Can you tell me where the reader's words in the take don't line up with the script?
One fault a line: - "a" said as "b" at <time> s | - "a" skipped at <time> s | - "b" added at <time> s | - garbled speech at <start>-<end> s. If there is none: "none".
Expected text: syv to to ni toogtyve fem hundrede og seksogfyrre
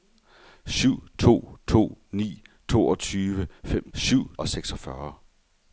- "hundrede" said as "syv" at 3.9 s